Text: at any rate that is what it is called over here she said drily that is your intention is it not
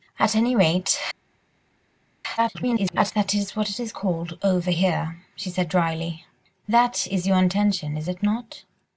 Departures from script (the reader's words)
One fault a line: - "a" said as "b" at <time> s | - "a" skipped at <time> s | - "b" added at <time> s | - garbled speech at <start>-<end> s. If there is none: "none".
- garbled speech at 2.4-3.1 s